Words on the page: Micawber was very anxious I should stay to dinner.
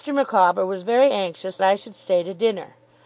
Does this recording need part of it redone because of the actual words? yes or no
no